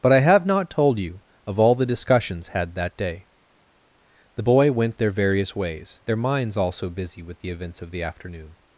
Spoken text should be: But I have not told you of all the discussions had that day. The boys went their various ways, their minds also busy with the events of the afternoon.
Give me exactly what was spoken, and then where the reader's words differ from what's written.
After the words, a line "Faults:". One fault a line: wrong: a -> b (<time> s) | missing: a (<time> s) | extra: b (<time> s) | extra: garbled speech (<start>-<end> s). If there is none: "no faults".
But I have not told you of all the discussions had that day. The boy went their various ways, their minds also busy with the events of the afternoon.
Faults:
wrong: boys -> boy (4.4 s)